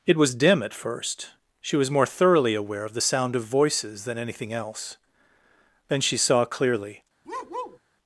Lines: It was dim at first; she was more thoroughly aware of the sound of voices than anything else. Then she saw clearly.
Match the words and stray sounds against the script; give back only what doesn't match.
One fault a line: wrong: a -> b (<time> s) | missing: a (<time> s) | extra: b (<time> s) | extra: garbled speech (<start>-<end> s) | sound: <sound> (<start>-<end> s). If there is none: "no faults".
sound: bark (7.2-7.8 s)